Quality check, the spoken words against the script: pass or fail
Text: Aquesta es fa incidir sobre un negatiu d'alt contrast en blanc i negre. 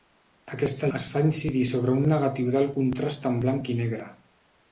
pass